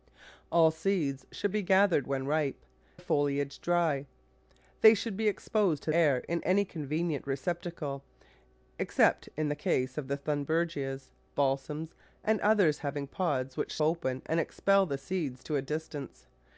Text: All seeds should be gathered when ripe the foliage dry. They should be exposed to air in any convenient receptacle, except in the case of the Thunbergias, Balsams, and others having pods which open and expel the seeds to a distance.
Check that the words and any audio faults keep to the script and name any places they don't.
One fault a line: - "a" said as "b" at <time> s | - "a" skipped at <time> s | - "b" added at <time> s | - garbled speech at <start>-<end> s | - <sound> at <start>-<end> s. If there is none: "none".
none